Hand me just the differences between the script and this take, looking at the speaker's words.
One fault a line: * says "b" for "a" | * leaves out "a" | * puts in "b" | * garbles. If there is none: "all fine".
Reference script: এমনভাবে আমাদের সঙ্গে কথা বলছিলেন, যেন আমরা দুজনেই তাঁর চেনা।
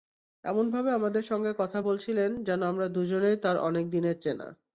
* puts in "অনেক দিনের"